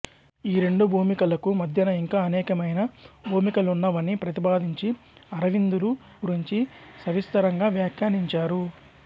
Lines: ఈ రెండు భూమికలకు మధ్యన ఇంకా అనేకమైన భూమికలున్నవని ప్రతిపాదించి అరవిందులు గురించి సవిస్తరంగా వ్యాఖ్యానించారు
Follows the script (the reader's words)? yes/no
yes